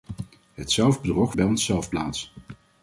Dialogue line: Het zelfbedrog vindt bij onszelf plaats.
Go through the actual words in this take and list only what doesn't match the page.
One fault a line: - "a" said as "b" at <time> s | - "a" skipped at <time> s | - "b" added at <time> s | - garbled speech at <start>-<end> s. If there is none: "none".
- "vindt" skipped at 1.4 s